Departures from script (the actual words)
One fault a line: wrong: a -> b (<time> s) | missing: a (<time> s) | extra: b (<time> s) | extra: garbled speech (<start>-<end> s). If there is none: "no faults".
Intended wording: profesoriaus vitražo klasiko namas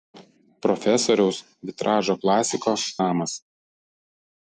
no faults